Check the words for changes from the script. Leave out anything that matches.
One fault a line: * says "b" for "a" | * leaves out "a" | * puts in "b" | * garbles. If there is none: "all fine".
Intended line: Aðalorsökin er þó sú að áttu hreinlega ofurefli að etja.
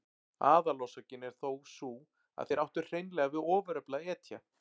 * puts in "þeir"
* puts in "við"